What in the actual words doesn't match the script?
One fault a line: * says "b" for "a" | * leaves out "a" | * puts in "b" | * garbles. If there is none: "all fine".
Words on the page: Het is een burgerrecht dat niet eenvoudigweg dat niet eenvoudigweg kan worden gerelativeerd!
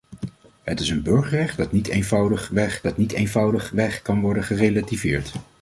all fine